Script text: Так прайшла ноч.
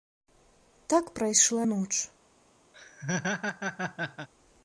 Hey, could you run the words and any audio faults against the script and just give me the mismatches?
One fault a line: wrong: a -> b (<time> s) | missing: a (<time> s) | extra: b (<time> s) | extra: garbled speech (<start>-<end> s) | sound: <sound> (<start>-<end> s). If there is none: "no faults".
sound: laugh (2.7-4.3 s)